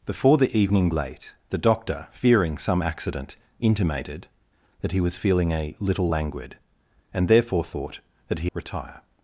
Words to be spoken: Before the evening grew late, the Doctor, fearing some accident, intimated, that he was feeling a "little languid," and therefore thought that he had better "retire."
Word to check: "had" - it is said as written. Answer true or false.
false